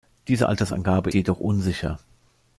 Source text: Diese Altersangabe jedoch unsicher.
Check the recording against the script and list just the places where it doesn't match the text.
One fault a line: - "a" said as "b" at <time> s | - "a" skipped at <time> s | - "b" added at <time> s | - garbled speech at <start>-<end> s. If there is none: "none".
none